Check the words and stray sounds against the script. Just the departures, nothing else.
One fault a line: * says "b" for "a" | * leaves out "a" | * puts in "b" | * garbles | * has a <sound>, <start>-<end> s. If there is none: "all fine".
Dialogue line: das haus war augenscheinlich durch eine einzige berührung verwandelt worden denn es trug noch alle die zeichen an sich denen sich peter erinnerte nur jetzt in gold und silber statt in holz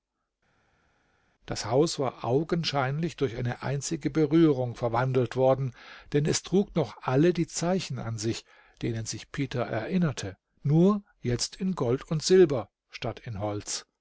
all fine